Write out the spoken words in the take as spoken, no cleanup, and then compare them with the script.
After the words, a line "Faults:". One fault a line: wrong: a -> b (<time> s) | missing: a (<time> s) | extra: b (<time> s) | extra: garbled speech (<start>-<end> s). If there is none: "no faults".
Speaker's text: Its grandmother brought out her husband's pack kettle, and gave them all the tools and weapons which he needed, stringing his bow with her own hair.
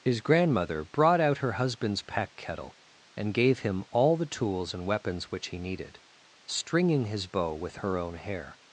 His grandmother brought out her husband's pack kettle, and gave him all the tools and weapons which he needed, stringing his bow with her own hair.
Faults:
wrong: Its -> His (0.0 s)
wrong: them -> him (3.6 s)